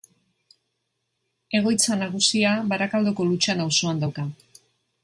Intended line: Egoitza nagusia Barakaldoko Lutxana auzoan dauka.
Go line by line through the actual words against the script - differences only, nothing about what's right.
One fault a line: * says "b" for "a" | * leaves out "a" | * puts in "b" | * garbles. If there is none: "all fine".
all fine